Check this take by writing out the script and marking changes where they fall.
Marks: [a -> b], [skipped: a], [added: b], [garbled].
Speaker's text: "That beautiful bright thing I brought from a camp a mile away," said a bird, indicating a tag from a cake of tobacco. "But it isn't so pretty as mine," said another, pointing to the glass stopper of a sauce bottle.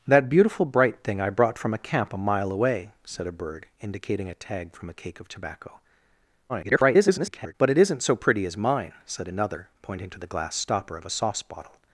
"That beautiful bright thing I brought from a camp a mile away," said a bird, indicating a tag from a cake of tobacco. [garbled] "But it isn't so pretty as mine," said another, pointing to the glass stopper of a sauce bottle.